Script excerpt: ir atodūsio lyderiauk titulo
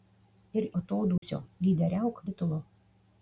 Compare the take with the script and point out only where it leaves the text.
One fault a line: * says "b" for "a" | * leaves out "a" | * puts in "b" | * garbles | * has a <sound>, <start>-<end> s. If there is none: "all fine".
* has a dropout, 1.2-1.2 s